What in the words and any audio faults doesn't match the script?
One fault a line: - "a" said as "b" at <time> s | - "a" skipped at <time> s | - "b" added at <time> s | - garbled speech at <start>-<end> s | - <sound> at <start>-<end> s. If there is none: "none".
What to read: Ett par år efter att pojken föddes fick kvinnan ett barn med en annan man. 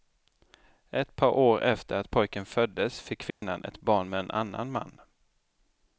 - dropout at 3.3-3.4 s